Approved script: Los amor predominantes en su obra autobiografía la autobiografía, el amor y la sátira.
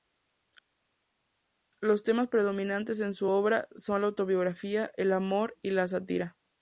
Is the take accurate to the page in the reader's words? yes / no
no